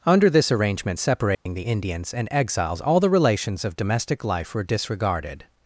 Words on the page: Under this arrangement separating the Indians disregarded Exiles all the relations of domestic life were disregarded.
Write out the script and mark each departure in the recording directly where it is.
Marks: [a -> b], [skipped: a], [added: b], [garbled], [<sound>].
Under this arrangement separating [dropout] the Indians [disregarded -> and] Exiles all the relations of domestic life were disregarded.